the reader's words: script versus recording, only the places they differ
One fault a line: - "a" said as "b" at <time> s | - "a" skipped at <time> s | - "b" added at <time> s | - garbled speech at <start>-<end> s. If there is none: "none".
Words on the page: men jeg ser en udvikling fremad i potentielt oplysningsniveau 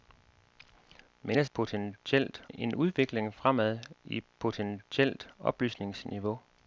- "ser" said as "potentielt" at 1.5 s